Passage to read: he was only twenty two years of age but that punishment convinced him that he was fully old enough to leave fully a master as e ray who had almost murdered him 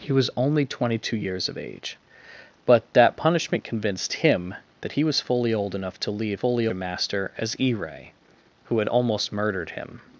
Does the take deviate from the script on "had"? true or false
false